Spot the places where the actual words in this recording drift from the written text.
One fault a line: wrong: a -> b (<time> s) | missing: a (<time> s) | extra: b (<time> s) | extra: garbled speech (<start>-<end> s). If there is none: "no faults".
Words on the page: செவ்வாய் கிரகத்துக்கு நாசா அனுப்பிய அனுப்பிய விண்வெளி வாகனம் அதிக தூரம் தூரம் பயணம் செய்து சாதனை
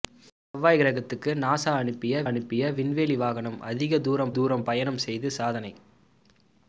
no faults